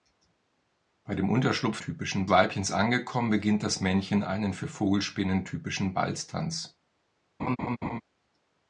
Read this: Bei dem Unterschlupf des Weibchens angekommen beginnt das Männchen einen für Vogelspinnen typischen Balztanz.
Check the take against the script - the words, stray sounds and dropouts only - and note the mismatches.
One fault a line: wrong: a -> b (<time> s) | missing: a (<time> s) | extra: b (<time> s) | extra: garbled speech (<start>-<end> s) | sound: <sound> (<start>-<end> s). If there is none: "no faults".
wrong: des -> typischen (1.8 s)
sound: laugh (7.4-8.0 s)